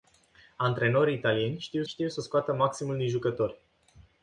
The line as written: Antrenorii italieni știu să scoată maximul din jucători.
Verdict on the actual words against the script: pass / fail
fail